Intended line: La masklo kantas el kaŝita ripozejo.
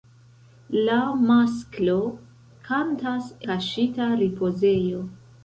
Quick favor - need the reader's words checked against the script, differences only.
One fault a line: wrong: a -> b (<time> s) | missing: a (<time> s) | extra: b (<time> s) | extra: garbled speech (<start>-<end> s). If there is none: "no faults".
missing: el (3.3 s)